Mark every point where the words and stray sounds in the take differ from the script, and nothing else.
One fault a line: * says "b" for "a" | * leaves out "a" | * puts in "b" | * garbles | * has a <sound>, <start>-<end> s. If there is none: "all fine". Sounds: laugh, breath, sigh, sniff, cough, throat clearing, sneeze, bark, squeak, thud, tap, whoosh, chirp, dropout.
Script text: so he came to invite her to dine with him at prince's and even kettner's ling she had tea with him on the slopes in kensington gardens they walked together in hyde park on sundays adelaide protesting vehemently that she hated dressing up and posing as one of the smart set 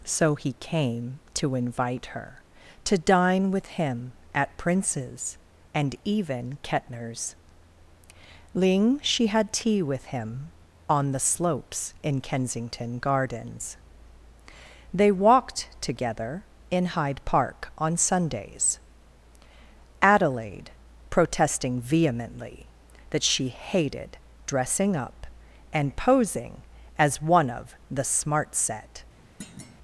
* has a thud, 29.4-29.8 s